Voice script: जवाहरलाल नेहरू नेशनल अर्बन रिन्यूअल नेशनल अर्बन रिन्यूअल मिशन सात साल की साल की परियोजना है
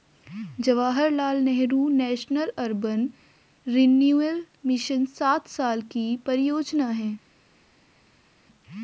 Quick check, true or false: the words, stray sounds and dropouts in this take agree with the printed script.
false